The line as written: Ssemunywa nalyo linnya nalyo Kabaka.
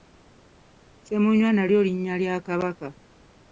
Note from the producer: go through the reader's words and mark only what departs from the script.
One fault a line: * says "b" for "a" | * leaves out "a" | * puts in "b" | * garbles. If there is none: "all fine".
* says "lya" for "nalyo"